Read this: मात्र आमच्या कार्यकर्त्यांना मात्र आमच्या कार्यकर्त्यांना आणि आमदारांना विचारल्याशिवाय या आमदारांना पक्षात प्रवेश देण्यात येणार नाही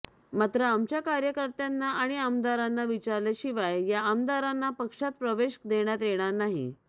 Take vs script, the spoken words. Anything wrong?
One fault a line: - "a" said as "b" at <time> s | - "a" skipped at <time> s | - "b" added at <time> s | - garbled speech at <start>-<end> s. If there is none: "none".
- "मात्र आमच्या कार्यकर्त्यांना" skipped at 1.9 s